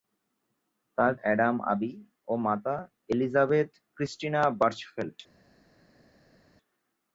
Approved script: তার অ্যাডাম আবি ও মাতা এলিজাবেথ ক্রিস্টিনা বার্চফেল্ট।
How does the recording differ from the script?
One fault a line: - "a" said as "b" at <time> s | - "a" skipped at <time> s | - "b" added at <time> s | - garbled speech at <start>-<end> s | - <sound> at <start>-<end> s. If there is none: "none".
none